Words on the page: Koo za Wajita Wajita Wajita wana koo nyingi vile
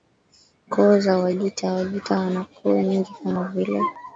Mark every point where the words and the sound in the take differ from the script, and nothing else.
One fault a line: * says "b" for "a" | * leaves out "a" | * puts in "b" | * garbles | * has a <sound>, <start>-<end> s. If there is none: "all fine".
* leaves out "Wajita"
* puts in "kama"